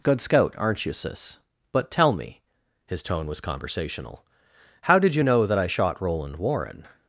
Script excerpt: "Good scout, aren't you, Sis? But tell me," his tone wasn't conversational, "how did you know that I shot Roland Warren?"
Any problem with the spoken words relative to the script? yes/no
yes